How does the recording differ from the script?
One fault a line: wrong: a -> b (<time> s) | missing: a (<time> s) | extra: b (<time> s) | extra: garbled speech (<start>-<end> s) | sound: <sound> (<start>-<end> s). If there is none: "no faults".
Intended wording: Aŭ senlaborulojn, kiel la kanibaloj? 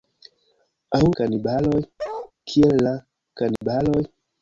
wrong: senlaborulojn -> kanibaloj (1.2 s)
sound: bark (2.0-2.3 s)
sound: dropout (3.6-3.6 s)